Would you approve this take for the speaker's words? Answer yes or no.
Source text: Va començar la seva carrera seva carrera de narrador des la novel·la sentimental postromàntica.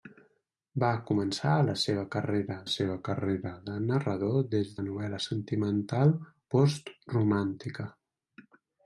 yes